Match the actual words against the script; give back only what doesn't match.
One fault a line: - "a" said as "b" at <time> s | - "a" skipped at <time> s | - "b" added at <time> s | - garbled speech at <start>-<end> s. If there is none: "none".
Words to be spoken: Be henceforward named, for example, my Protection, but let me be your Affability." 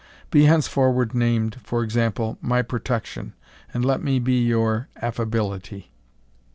- "but" said as "and" at 3.7 s